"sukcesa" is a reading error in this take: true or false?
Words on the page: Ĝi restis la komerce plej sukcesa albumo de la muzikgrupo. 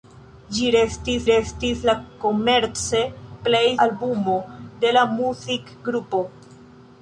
true